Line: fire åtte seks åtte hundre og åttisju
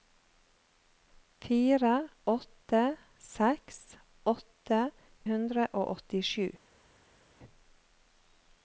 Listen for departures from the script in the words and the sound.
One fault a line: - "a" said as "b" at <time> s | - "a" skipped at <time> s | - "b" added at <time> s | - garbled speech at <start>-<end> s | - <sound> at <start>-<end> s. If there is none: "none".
none